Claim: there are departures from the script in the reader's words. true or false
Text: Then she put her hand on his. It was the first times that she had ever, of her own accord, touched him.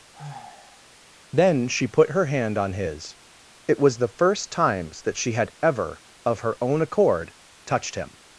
false